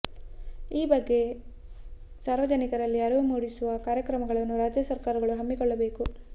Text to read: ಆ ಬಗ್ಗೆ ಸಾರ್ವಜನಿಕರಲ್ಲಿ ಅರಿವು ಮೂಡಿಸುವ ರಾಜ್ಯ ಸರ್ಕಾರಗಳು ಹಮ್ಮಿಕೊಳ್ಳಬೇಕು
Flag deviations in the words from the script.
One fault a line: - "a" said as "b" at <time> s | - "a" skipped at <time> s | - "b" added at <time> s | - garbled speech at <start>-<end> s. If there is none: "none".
- "ಆ" said as "ಈ" at 0.7 s
- "ಕಾರ್ಯಕ್ರಮಗಳನ್ನು" added at 3.9 s